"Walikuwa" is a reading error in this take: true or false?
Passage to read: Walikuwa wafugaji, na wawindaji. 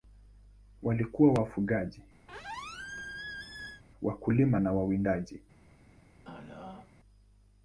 false